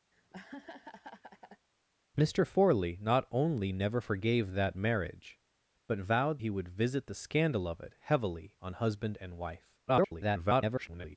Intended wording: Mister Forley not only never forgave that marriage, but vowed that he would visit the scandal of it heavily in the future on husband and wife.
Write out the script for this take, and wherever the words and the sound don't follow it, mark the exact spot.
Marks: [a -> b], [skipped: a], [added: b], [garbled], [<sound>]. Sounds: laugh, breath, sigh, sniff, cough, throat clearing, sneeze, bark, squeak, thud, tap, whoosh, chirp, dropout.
[laugh] Mister Forley not only never forgave that marriage, but vowed [skipped: that] he would visit the scandal of it heavily [skipped: in the future] on husband and wife. [garbled]